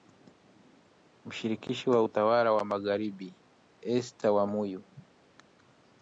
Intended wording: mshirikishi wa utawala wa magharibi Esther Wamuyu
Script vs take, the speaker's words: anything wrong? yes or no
no